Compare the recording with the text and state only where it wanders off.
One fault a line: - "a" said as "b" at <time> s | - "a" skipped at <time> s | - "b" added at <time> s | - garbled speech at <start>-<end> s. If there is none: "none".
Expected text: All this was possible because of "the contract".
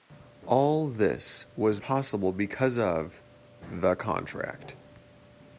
none